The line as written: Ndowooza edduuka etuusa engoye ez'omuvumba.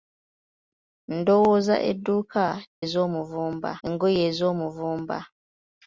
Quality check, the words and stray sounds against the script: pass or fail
fail